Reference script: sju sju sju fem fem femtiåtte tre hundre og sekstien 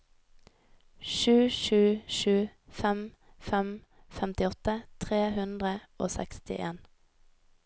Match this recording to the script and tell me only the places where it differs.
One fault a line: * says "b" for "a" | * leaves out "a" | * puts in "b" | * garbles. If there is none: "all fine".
all fine